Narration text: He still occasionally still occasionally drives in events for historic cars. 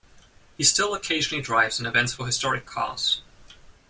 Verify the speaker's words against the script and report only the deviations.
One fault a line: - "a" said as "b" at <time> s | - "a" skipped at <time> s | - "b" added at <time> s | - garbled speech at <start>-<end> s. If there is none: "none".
- "still occasionally" skipped at 1.4 s